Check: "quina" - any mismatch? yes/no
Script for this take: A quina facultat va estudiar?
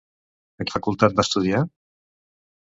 yes